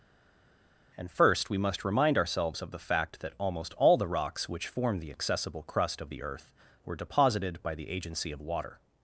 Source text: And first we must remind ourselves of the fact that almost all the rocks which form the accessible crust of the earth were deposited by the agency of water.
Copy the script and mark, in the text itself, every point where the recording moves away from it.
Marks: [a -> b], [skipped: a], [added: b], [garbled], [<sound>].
And first we must remind ourselves of the fact that almost all the rocks which form the accessible crust of the earth were deposited by the agency of water.